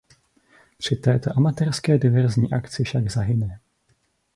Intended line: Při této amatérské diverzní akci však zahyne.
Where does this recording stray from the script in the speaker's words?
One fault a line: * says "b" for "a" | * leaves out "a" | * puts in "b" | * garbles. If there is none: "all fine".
all fine